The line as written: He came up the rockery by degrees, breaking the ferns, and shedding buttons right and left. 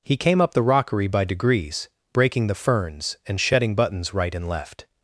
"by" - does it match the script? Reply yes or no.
yes